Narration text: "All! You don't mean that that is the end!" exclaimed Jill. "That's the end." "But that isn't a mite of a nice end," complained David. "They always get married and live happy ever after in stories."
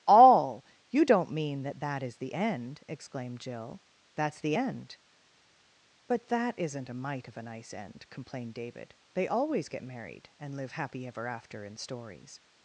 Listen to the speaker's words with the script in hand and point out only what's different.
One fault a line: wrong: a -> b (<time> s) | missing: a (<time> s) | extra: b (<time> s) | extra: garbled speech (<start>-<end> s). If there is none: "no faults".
no faults